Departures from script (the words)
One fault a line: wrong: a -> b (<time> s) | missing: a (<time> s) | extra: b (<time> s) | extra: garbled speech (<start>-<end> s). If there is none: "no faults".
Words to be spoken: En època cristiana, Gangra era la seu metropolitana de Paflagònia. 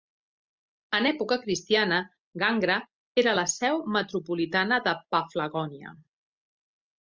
no faults